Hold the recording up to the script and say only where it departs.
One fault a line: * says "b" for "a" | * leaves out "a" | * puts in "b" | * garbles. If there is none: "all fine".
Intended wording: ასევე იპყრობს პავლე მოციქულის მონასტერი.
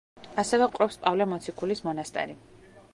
all fine